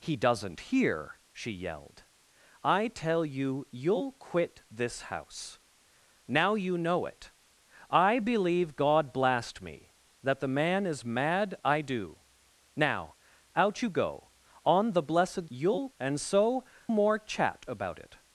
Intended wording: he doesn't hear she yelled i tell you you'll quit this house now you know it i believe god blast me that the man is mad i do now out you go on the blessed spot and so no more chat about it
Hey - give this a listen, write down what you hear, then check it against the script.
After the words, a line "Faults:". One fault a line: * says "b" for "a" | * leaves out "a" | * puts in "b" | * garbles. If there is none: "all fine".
he doesn't hear she yelled i tell you you'll quit this house now you know it i believe god blast me that the man is mad i do now out you go on the blessed you'll and so more chat about it
Faults:
* says "you'll" for "spot"
* leaves out "no"